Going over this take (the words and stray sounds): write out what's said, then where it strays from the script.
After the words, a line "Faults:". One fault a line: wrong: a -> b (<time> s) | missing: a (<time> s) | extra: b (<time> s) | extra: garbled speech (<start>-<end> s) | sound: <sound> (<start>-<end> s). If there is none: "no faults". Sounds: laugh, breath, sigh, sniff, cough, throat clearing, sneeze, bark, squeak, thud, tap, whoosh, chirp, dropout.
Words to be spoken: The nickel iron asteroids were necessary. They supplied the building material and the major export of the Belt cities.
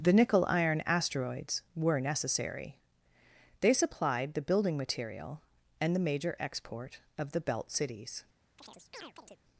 The nickel iron asteroids were necessary. They supplied the building material and the major export of the Belt cities.
Faults:
sound: chirp (8.6-9.4 s)